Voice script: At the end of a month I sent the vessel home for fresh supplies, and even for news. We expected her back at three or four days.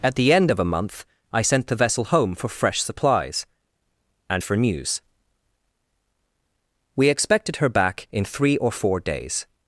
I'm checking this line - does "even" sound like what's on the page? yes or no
no